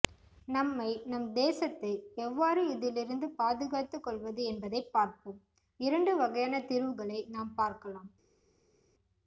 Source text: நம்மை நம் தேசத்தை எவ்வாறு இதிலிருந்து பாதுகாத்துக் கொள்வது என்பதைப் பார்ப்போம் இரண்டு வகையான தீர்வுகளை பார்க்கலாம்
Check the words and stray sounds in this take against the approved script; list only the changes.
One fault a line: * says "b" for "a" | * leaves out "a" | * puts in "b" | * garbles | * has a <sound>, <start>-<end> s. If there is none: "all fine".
* puts in "நாம்"